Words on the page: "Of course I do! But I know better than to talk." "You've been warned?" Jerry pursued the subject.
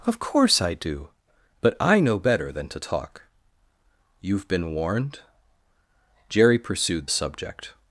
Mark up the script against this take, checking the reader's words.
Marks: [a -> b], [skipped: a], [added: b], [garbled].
"Of course I do! But I know better than to talk." "You've been warned?" Jerry pursued [skipped: the] subject.